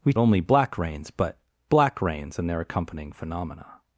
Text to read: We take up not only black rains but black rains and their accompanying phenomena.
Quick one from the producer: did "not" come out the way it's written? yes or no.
no